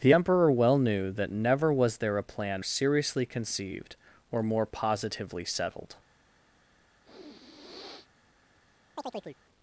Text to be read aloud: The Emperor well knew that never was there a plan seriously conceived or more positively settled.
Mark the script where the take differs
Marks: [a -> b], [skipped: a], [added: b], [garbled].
The Emperor well knew that never was there a plan seriously conceived or more positively settled.